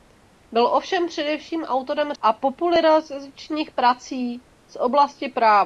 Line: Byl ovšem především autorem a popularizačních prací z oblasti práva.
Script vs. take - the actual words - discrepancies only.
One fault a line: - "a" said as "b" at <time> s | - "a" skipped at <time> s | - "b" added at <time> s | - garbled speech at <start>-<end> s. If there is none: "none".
none